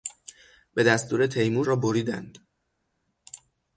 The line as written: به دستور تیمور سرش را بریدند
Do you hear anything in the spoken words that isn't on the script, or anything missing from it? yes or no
yes